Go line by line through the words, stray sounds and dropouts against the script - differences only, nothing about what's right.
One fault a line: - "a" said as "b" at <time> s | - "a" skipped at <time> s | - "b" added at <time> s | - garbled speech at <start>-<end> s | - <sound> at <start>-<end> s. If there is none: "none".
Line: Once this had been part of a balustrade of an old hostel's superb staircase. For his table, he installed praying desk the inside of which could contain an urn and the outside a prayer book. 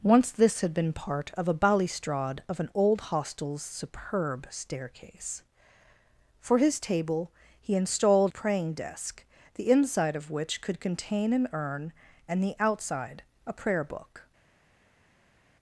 none